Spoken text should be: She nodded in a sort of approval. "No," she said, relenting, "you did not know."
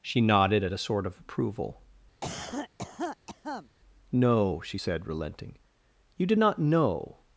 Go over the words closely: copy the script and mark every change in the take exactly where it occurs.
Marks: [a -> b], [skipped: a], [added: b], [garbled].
She nodded [in -> at] a sort of approval. "No," she said, relenting, "you did not know."